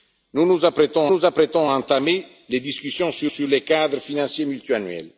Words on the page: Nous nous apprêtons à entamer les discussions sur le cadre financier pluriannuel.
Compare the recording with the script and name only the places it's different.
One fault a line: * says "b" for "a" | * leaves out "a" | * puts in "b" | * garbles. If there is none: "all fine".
* puts in "nous apprêtons"
* puts in "sur"